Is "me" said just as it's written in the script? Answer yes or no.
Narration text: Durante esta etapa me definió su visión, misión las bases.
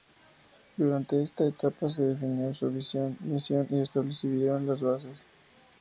no